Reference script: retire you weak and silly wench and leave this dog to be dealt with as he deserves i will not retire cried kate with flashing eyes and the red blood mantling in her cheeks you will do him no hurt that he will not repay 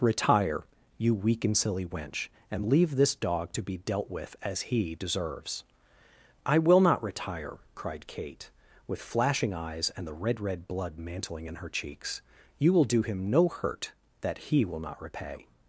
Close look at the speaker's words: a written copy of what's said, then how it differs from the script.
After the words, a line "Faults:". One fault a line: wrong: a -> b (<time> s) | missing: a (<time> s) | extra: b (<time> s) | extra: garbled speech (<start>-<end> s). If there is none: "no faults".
retire you weak and silly wench and leave this dog to be dealt with as he deserves i will not retire cried kate with flashing eyes and the red red blood mantling in her cheeks you will do him no hurt that he will not repay
Faults:
extra: red (10.4 s)